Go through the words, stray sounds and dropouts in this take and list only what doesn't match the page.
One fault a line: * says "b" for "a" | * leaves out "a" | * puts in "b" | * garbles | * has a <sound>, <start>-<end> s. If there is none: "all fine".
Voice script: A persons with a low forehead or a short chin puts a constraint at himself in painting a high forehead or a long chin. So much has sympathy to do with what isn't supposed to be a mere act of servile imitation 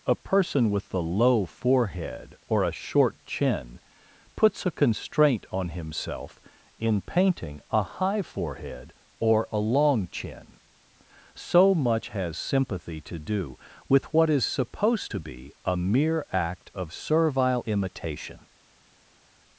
* says "person" for "persons"
* says "on" for "at"
* says "is" for "isn't"